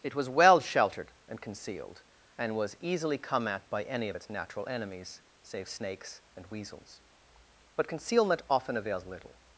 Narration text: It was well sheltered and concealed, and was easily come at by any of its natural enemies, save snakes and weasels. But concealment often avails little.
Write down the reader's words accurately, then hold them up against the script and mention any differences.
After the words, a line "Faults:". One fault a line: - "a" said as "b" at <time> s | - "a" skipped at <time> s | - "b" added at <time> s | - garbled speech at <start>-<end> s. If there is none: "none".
It was well sheltered and concealed, and was easily come at by any of its natural enemies, save snakes and weasels. But concealment often avails little.
Faults:
none